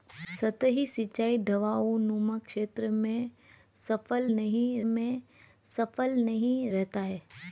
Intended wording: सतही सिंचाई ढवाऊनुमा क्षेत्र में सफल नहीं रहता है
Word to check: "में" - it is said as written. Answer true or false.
true